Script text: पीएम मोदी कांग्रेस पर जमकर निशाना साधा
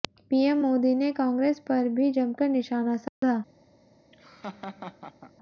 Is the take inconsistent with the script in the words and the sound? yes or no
yes